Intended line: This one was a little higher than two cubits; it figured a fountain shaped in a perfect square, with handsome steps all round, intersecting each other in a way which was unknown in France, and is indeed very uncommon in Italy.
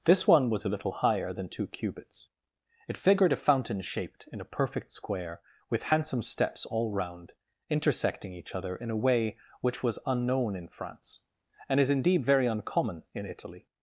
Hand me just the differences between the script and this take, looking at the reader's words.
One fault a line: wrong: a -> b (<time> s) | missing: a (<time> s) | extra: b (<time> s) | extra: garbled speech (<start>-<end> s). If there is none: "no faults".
no faults